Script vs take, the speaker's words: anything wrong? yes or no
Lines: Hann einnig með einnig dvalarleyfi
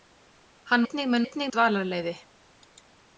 no